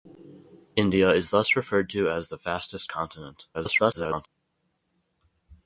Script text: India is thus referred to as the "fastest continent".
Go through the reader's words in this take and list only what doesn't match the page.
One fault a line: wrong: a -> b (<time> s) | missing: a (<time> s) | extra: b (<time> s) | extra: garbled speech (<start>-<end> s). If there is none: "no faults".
extra: garbled speech (3.5-4.3 s)